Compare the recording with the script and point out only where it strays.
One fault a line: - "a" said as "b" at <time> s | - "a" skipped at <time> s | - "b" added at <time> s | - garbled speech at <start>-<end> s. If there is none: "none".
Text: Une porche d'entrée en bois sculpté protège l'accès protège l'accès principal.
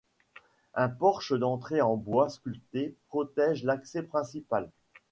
- "Une" said as "Un" at 0.7 s
- "protège l'accès" skipped at 4.0 s